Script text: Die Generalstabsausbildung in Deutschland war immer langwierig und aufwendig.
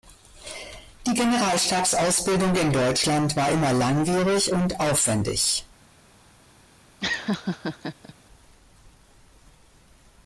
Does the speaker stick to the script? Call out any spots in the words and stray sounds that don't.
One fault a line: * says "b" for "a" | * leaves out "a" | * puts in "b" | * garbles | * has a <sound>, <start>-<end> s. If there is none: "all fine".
* has a laugh, 7.0-8.1 s